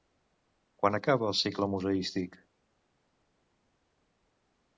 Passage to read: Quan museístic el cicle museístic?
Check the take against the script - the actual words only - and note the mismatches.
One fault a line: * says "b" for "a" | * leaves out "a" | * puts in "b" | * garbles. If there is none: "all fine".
* says "acaba" for "museístic"